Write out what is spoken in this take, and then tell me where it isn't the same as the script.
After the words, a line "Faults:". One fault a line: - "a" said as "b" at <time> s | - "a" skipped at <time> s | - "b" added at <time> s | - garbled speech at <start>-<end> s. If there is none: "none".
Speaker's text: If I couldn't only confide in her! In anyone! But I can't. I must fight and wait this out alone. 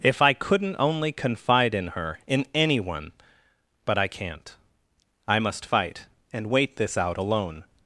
If I couldn't only confide in her! In anyone! But I can't. I must fight and wait this out alone.
Faults:
none